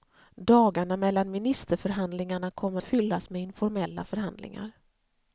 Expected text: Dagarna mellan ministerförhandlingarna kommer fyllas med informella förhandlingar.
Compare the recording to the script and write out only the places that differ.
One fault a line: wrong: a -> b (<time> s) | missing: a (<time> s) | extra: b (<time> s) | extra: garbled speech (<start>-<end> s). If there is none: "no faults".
no faults